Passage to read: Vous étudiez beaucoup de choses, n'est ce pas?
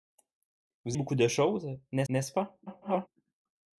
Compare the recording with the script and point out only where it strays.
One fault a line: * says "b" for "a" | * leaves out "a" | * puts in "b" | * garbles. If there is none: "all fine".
* leaves out "étudiez"
* puts in "n'est"
* garbles